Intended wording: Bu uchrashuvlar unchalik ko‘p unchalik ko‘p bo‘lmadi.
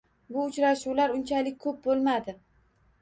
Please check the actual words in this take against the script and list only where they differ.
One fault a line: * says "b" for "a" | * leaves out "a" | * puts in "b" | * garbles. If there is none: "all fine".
* leaves out "unchalik ko‘p"